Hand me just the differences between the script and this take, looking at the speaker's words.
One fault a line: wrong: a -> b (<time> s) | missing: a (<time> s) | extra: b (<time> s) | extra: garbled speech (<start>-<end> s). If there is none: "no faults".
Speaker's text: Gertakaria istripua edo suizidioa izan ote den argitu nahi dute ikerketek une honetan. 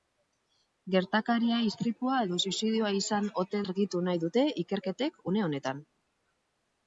missing: den (3.6 s)